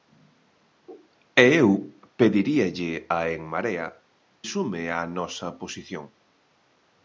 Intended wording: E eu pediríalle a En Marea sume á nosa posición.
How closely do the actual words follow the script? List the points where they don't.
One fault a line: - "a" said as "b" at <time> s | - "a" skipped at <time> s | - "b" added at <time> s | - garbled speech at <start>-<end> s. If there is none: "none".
none